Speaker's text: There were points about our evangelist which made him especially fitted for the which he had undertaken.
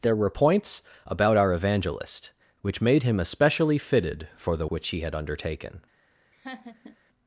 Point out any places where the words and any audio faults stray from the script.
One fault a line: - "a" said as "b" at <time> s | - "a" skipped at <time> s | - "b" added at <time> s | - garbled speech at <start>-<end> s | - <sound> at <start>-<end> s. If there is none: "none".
- laugh at 6.3-7.0 s